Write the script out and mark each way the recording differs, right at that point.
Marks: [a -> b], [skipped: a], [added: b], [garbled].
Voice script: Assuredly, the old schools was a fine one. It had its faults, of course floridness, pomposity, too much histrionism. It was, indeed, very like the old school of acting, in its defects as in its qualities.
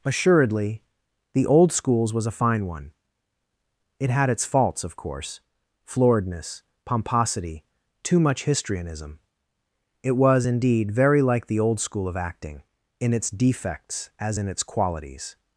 Assuredly, the old schools was a fine one. It had its faults, of course floridness, pomposity, too much histrionism. It was, indeed, very like the old school of acting, in its defects as in its qualities.